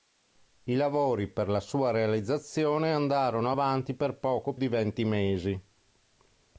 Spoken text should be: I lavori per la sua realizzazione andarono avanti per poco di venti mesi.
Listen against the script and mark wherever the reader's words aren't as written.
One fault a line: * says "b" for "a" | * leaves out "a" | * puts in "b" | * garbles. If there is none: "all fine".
all fine